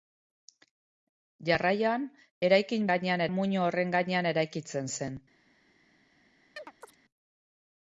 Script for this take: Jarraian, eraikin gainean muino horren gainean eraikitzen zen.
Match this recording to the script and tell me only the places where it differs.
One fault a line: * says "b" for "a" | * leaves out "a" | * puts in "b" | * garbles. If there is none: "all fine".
all fine